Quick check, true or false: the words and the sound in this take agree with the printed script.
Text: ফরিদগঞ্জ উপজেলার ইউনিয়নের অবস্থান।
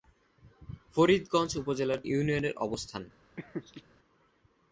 false